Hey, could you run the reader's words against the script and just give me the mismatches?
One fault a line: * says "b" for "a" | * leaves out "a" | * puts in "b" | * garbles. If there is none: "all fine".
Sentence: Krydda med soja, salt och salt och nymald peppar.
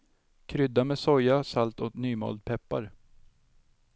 * leaves out "salt och"